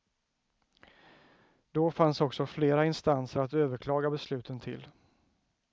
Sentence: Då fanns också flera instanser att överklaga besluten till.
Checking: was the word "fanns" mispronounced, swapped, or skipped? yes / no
no